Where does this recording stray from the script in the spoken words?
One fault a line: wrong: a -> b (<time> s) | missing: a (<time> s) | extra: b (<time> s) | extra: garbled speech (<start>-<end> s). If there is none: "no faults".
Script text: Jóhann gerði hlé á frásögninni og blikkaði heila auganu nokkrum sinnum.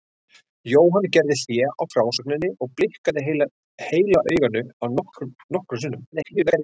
extra: garbled speech (6.1-6.6 s)